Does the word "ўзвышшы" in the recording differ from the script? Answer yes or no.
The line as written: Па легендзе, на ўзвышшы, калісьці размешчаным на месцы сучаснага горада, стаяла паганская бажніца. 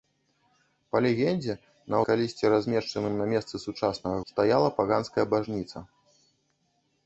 yes